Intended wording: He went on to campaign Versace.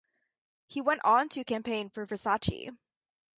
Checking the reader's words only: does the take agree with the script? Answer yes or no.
no